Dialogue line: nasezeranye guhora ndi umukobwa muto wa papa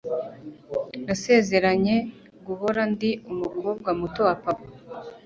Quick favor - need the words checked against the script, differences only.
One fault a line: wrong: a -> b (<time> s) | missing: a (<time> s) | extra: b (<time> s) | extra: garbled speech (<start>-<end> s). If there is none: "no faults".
no faults